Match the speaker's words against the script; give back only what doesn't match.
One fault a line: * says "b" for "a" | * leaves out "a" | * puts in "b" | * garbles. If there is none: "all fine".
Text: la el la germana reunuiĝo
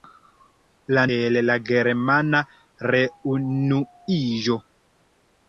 all fine